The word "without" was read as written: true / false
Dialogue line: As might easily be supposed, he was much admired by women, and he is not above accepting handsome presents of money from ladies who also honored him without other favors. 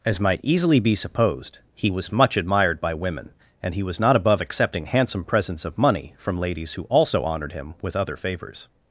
false